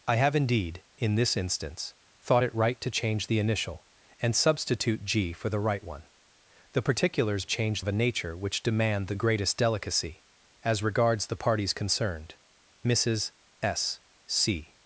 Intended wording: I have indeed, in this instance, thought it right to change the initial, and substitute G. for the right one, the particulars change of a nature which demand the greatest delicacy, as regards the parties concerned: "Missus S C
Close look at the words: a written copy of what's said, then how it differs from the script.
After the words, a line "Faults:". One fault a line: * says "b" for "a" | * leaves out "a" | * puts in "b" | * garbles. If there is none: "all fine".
I have indeed, in this instance, thought it right to change the initial, and substitute G. for the right one, the particulars change of a nature which demand the greatest delicacy, as regards the parties concerned: "Missus S C
Faults:
all fine